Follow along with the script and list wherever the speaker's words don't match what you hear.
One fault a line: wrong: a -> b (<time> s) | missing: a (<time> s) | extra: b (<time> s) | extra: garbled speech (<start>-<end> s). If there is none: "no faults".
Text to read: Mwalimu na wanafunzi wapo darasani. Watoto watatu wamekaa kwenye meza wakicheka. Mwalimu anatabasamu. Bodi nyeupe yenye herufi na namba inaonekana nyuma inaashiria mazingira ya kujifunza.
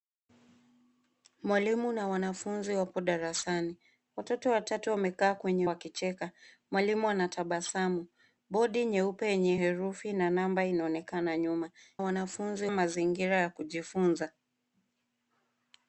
missing: meza (5.7 s)
wrong: inaashiria -> wanafunzi (12.0 s)